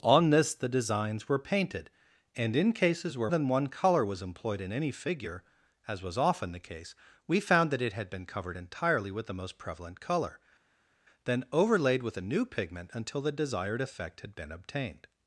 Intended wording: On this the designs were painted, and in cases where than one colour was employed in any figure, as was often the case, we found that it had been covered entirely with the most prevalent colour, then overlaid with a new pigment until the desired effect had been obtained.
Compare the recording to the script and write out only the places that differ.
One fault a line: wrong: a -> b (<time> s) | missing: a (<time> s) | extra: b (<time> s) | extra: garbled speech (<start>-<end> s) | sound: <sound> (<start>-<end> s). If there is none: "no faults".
no faults